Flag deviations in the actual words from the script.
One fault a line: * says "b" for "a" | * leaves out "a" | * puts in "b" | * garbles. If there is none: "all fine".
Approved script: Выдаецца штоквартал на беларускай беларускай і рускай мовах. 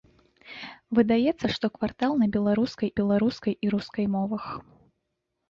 all fine